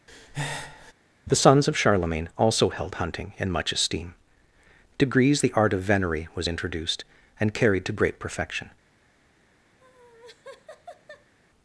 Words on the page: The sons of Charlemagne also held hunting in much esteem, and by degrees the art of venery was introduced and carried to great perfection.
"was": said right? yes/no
yes